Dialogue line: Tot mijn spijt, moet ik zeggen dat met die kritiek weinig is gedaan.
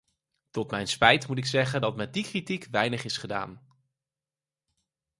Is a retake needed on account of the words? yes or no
no